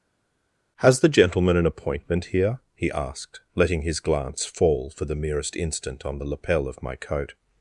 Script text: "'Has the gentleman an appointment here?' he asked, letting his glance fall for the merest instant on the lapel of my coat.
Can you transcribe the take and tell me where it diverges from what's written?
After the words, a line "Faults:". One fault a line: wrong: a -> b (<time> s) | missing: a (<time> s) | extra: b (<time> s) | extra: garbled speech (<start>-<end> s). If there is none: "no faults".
"'Has the gentleman an appointment here?' he asked, letting his glance fall for the merest instant on the lapel of my coat.
Faults:
no faults